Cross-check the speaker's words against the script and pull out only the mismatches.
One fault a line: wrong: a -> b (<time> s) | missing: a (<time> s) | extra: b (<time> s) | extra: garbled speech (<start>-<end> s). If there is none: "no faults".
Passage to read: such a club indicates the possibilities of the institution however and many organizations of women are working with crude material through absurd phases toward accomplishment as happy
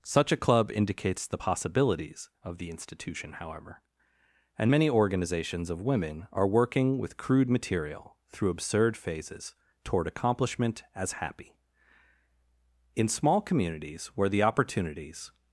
extra: in small communities where the opportunities (13.0 s)